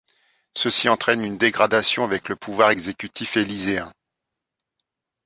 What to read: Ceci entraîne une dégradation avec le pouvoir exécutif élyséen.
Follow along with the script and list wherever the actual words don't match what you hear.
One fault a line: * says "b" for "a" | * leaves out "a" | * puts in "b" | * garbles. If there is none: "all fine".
all fine